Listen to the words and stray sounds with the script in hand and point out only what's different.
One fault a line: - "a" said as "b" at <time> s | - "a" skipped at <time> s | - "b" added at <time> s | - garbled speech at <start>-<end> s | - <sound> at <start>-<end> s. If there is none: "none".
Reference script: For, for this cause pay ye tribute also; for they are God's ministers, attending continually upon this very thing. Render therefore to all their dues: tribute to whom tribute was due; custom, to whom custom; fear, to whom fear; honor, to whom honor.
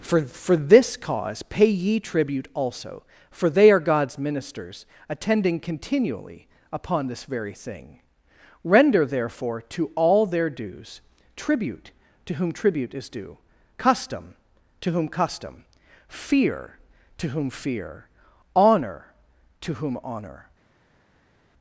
- "was" said as "is" at 12.9 s